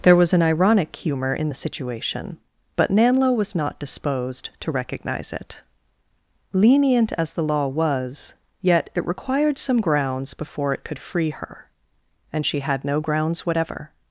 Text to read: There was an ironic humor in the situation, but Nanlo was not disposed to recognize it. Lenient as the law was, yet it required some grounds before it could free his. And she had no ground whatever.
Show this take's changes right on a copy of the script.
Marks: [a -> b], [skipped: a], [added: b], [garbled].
There was an ironic humor in the situation, but Nanlo was not disposed to recognize it. Lenient as the law was, yet it required some grounds before it could free [his. -> her] And she had no [ground -> grounds] whatever.